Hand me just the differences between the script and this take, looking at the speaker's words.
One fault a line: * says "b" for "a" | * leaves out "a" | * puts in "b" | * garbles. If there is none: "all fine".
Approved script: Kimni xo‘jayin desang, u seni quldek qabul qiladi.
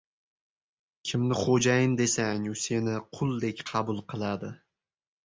all fine